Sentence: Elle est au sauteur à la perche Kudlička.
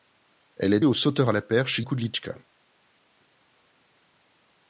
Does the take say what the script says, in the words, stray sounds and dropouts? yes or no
yes